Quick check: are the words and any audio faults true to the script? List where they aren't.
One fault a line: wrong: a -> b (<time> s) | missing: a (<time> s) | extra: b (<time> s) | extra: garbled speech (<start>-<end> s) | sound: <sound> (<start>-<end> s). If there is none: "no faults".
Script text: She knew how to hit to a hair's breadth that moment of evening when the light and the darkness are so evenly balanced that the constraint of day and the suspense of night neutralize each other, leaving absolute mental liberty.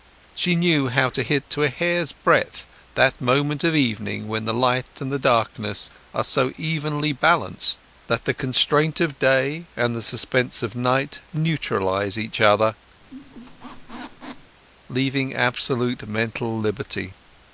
sound: squeak (13.0-14.6 s)